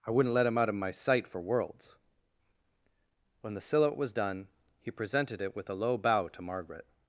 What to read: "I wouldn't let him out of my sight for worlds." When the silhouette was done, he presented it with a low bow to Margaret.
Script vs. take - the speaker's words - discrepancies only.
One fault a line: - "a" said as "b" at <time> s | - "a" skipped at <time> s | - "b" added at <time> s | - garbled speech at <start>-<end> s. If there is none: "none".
none